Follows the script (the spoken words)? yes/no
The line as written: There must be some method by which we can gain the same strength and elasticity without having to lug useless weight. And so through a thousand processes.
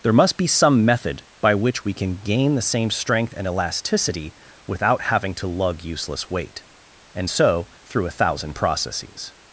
yes